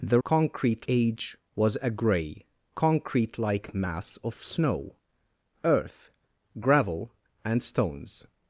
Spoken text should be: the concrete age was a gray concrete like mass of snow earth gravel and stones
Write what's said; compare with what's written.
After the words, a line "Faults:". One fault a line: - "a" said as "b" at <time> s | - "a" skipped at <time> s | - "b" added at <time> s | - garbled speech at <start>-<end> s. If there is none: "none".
the concrete age was a gray concrete like mass of snow earth gravel and stones
Faults:
none